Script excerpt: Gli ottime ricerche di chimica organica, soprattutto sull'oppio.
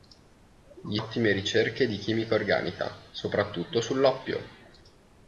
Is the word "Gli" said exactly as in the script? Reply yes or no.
yes